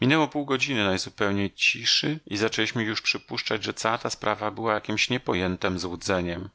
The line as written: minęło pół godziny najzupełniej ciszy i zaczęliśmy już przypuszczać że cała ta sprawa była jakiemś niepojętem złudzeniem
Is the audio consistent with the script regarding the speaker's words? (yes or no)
yes